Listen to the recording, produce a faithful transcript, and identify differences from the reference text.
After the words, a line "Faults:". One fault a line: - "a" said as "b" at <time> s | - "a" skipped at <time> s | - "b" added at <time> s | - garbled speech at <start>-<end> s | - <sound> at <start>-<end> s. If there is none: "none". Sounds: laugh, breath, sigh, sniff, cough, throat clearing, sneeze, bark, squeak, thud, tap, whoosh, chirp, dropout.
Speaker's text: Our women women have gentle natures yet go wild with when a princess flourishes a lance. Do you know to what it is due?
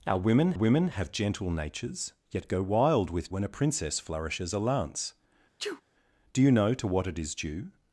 Our women women have gentle natures yet go wild with when a princess flourishes a lance. Do you know to what it is due?
Faults:
- sneeze at 5.6-5.8 s